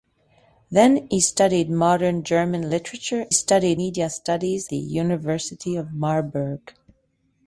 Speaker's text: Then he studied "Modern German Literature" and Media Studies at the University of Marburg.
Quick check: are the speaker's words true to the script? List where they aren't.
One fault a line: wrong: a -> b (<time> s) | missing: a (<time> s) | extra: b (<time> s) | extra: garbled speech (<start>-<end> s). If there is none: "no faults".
wrong: and -> studied (3.3 s)
missing: at (4.7 s)